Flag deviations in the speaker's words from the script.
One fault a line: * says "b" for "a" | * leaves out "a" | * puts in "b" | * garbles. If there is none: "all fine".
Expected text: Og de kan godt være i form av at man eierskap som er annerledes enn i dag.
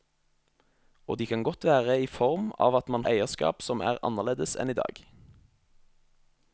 all fine